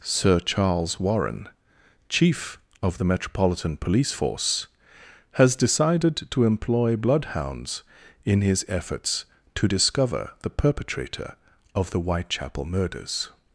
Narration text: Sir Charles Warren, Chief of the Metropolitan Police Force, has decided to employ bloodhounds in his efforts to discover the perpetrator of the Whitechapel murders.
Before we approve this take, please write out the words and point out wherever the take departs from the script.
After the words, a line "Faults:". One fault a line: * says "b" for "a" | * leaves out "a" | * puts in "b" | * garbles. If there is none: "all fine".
Sir Charles Warren, Chief of the Metropolitan Police Force, has decided to employ bloodhounds in his efforts to discover the perpetrator of the Whitechapel murders.
Faults:
all fine